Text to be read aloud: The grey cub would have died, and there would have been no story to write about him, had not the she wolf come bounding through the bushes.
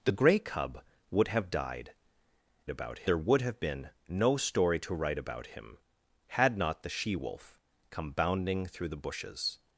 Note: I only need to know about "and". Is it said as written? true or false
false